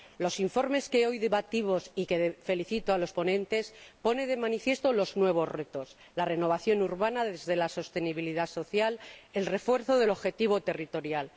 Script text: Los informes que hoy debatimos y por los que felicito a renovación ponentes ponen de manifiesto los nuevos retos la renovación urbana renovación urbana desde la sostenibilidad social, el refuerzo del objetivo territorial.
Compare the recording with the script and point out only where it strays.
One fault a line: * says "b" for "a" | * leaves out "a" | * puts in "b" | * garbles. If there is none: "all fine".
* says "los" for "renovación"
* leaves out "renovación urbana"